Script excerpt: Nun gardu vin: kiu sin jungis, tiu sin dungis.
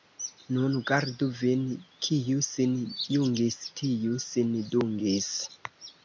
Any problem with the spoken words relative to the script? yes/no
no